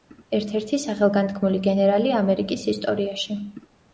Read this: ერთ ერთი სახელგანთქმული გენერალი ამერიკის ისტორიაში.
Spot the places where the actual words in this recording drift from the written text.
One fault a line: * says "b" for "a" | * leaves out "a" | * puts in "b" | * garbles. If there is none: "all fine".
all fine